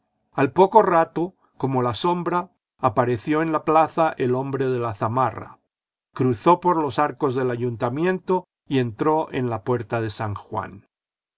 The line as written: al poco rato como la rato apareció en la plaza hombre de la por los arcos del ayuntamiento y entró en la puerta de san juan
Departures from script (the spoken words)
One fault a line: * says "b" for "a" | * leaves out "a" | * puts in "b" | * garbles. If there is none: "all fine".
* says "sombra" for "rato"
* puts in "el"
* puts in "zamarra cruzó"